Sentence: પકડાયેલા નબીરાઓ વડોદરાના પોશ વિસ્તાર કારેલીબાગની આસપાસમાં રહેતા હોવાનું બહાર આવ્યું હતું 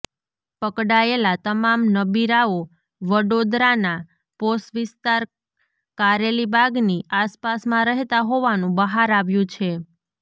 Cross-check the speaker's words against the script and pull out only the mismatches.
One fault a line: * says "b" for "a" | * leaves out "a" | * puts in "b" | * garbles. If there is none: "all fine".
* puts in "તમામ"
* says "છે" for "હતું"